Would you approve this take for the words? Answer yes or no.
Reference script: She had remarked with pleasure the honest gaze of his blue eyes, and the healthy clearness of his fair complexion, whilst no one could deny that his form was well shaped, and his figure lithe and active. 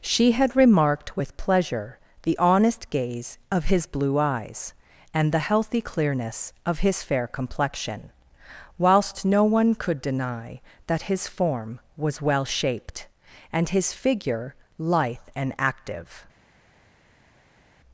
yes